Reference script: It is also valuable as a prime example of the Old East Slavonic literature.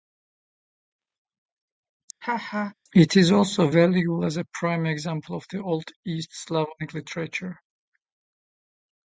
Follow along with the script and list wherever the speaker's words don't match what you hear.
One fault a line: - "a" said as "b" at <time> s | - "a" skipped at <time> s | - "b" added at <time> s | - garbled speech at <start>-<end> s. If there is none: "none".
none